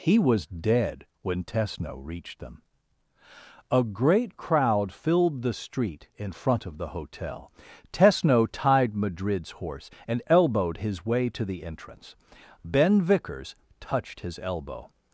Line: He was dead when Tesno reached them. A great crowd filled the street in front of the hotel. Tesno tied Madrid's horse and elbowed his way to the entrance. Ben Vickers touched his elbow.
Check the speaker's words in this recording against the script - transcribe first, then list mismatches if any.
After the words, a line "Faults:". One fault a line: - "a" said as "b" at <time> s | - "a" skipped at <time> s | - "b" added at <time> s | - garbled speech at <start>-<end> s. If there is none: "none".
He was dead when Tesno reached them. A great crowd filled the street in front of the hotel. Tesno tied Madrid's horse and elbowed his way to the entrance. Ben Vickers touched his elbow.
Faults:
none